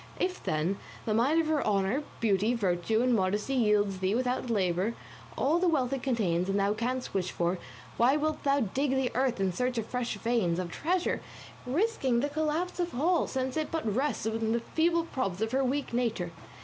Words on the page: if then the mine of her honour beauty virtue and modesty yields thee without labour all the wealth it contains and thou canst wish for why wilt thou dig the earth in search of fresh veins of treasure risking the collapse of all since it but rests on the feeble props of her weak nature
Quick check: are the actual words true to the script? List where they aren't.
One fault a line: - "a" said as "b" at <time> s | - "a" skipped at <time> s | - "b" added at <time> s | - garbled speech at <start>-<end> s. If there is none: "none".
none